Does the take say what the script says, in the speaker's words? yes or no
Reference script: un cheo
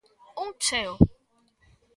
yes